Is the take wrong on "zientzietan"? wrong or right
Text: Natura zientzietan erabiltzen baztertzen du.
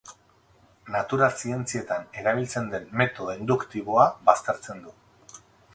right